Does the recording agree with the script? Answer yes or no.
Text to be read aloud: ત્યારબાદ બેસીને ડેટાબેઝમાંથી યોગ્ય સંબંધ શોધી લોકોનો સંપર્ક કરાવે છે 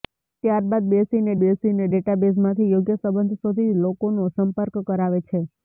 no